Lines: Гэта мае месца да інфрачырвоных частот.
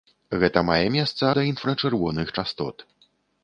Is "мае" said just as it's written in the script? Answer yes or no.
yes